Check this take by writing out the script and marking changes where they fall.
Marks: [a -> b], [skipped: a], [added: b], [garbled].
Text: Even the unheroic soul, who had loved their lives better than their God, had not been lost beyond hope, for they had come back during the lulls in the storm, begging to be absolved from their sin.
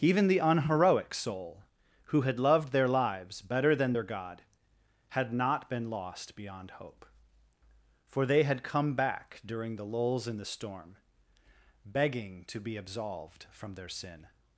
Even the unheroic soul, who had loved their lives better than their God, had not been lost beyond hope, for they had come back during the lulls in the storm, begging to be absolved from their sin.